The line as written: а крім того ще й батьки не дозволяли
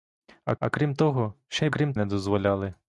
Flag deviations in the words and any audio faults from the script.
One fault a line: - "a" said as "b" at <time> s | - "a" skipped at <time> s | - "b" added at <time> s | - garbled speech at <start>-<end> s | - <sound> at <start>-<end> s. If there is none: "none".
- "а" added at 0.6 s
- "батьки" said as "крім" at 1.7 s